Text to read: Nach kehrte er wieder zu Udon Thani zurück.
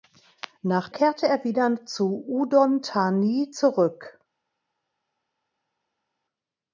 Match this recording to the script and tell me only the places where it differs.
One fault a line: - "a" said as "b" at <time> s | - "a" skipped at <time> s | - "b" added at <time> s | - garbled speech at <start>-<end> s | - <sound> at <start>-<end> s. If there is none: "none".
none